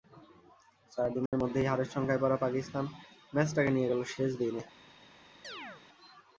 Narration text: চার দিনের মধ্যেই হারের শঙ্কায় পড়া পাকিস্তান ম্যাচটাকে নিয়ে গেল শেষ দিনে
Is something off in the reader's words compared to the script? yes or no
no